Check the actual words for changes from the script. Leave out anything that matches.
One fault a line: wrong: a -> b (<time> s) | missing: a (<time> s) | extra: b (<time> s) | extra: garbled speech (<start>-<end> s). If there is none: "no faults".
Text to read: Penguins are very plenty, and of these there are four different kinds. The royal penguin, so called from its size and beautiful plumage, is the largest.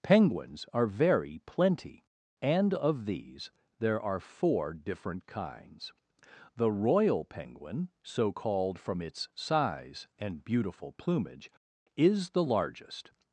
no faults